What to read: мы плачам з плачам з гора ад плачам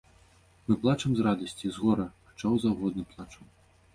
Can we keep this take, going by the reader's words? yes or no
no